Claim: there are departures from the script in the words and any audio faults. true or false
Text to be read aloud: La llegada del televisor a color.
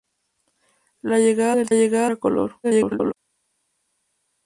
true